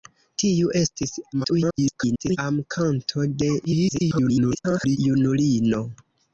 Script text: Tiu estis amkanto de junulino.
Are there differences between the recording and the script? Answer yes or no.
yes